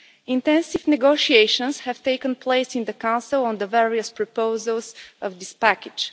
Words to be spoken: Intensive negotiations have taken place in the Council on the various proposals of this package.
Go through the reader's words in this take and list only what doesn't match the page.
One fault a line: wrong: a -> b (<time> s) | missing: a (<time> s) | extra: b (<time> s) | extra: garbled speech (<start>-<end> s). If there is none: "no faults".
no faults